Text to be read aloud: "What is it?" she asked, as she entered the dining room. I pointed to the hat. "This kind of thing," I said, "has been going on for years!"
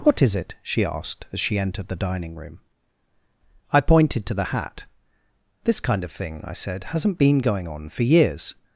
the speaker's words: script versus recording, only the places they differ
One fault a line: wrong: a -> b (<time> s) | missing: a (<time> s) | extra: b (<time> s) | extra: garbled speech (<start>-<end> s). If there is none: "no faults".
wrong: has -> hasn't (6.8 s)